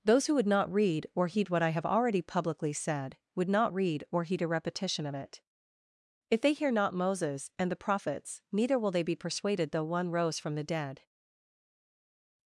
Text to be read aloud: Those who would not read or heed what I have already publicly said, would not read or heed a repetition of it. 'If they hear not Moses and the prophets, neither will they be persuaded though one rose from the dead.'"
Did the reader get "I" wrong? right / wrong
right